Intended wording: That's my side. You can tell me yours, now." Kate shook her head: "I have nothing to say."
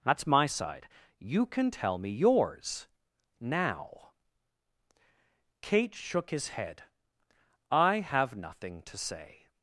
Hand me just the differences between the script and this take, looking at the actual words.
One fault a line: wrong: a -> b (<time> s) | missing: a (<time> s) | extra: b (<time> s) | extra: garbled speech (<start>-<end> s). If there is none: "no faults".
wrong: her -> his (6.3 s)